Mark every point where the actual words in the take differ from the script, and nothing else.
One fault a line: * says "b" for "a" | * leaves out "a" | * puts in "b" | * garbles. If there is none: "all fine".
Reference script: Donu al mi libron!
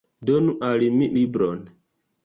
all fine